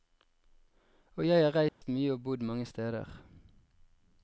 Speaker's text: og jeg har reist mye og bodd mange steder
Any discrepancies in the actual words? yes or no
no